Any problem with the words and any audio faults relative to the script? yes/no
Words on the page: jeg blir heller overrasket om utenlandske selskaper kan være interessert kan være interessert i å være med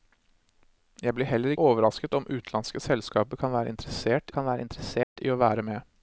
yes